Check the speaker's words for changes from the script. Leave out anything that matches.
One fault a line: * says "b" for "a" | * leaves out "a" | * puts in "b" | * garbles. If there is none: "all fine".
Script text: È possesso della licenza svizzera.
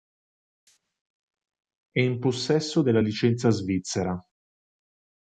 * puts in "in"